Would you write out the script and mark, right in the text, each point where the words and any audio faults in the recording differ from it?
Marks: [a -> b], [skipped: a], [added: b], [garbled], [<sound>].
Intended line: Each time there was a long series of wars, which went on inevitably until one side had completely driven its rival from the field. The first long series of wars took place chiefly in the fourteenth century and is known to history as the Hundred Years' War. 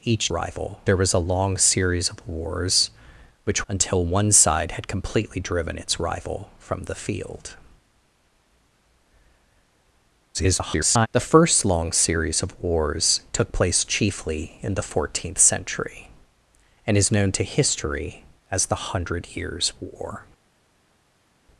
Each [time -> rival] there was a long series of wars, which [skipped: went on inevitably] until one side had completely driven its rival from the field. [garbled] The first long series of wars took place chiefly in the fourteenth century and is known to history as the Hundred Years' War.